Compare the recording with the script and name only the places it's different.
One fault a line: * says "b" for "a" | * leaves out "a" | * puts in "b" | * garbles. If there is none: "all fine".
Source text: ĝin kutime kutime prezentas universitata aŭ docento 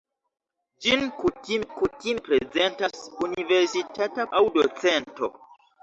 all fine